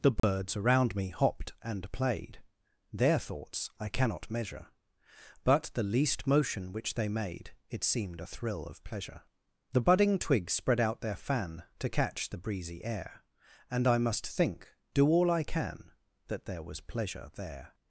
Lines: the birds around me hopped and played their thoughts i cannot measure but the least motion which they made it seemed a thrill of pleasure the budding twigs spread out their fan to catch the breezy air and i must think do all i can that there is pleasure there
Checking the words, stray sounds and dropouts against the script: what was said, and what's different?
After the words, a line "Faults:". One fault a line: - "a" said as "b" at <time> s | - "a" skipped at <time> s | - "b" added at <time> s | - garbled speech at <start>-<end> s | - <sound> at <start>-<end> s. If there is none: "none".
the birds around me hopped and played their thoughts i cannot measure but the least motion which they made it seemed a thrill of pleasure the budding twigs spread out their fan to catch the breezy air and i must think do all i can that there was pleasure there
Faults:
- dropout at 0.2-0.2 s
- "is" said as "was" at 16.6 s